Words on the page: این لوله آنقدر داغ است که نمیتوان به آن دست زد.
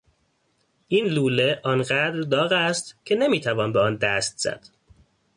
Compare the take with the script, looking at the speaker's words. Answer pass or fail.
pass